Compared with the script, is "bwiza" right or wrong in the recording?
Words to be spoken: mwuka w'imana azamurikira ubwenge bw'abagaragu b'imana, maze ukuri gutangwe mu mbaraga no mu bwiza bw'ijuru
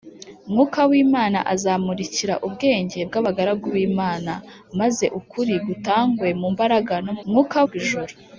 wrong